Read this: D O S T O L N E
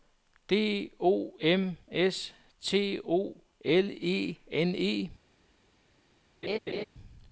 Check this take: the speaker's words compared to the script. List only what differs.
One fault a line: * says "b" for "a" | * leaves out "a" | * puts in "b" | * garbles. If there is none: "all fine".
* puts in "M"
* puts in "E"